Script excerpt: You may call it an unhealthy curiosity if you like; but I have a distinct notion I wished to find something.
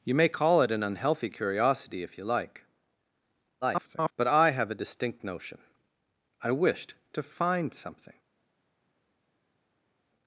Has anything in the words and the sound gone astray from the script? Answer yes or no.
yes